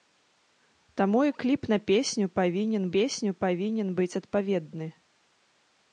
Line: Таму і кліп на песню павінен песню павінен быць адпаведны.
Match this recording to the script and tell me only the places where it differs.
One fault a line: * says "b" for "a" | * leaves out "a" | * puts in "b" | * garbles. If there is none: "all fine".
all fine